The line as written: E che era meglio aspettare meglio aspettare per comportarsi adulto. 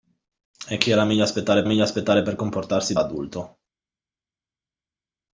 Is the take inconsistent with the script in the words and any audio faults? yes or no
no